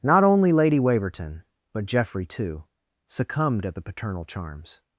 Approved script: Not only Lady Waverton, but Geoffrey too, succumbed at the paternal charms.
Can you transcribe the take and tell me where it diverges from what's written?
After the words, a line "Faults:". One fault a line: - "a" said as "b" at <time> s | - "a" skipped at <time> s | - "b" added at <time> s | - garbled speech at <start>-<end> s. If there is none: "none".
Not only Lady Waverton, but Geoffrey too, succumbed at the paternal charms.
Faults:
none